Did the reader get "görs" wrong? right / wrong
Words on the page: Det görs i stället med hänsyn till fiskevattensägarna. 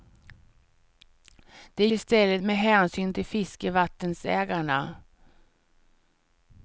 wrong